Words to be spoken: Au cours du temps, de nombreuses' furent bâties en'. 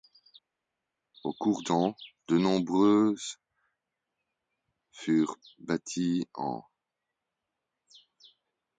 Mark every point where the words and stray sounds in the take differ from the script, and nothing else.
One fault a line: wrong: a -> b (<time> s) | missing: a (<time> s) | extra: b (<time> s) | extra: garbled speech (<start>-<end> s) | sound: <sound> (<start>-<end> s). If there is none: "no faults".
missing: du (1.6 s)